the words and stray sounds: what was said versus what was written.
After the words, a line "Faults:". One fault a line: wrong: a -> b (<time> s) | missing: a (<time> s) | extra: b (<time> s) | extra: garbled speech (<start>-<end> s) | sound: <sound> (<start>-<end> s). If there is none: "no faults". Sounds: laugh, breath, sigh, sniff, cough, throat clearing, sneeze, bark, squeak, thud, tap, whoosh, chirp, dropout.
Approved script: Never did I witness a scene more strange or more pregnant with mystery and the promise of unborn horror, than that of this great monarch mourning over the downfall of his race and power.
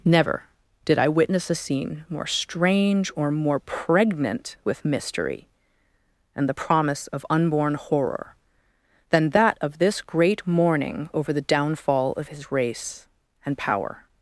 Never did I witness a scene more strange or more pregnant with mystery and the promise of unborn horror, than that of this great mourning over the downfall of his race and power.
Faults:
missing: monarch (10.5 s)